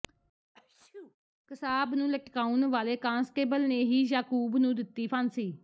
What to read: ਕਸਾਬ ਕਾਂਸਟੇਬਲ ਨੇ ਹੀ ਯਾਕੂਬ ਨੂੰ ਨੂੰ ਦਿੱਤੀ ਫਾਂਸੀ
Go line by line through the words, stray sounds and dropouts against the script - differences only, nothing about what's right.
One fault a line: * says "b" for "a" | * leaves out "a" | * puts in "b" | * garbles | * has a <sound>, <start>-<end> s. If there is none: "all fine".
* has a sneeze, 0.5-1.2 s
* puts in "ਨੂੰ ਲਟਕਾਉਣ ਵਾਲੇ"
* leaves out "ਨੂੰ"